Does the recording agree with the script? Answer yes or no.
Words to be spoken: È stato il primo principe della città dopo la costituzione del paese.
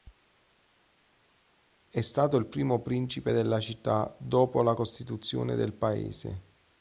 yes